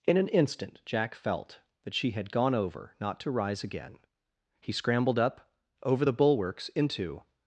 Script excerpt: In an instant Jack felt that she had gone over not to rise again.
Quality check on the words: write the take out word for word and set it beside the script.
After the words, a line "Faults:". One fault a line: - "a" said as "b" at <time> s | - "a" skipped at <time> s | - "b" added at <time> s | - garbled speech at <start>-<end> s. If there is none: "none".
In an instant Jack felt that she had gone over not to rise again. He scrambled up over the bulwarks into
Faults:
- "He scrambled up over the bulwarks into" added at 4.6 s